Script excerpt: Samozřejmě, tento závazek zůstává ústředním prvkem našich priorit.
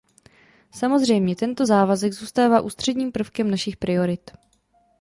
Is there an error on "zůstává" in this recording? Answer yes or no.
no